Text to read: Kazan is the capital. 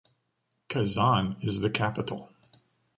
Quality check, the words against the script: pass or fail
pass